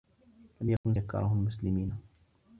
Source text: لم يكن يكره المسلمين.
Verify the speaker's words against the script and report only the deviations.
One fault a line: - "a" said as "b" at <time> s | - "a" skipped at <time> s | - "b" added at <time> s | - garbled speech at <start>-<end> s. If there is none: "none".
none